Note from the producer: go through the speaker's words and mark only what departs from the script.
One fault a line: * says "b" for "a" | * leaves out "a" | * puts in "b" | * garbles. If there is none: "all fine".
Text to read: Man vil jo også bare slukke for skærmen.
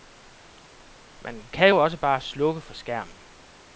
* says "kan" for "vil"